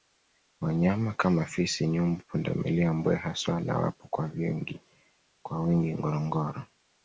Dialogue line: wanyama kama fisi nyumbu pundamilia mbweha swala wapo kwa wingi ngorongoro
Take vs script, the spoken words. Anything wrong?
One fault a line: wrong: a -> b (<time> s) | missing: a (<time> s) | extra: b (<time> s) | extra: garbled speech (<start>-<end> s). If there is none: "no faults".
no faults